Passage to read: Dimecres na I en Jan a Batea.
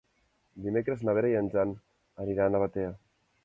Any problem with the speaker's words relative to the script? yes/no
yes